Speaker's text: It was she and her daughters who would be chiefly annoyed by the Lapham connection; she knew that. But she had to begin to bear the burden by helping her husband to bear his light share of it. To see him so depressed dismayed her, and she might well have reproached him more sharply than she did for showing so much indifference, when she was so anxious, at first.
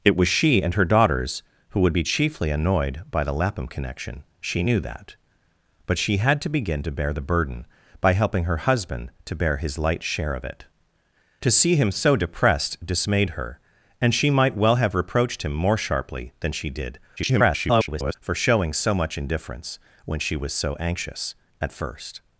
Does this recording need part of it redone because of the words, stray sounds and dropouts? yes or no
yes